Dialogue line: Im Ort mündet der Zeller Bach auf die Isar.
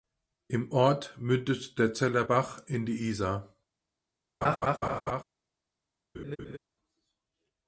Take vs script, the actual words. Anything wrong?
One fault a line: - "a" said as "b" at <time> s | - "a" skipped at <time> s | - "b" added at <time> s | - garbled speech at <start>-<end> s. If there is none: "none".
- "auf" said as "in" at 2.7 s